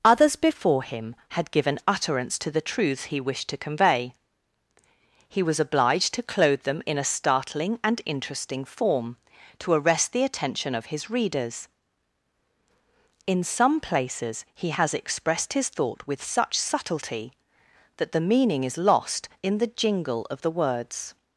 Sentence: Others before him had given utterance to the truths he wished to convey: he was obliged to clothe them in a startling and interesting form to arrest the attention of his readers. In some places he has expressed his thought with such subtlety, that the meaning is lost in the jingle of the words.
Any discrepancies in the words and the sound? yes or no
no